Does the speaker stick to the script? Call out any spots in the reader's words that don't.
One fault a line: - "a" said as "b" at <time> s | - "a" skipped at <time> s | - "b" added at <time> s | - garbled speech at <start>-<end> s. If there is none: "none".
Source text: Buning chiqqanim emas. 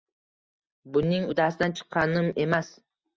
- "uddasidan" added at 1.3 s